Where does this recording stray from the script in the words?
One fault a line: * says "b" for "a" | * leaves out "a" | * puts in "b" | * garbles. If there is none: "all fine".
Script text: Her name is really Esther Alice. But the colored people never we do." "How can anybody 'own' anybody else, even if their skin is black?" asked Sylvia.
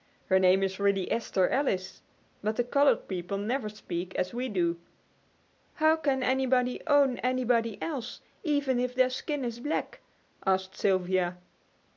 * puts in "speak as"